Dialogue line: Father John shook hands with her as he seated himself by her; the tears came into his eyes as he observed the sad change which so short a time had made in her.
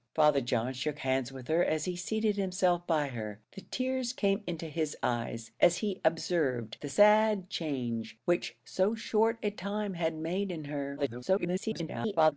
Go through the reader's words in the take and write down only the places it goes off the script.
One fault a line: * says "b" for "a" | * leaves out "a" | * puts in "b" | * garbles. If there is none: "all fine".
* garbles